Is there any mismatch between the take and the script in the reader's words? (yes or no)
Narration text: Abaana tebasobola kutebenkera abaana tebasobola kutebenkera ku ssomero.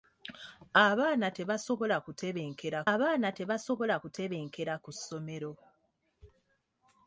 no